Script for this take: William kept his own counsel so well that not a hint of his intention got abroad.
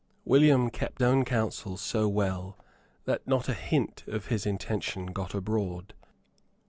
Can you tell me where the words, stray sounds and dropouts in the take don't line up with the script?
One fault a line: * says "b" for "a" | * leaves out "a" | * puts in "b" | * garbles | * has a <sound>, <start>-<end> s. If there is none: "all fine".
* leaves out "his"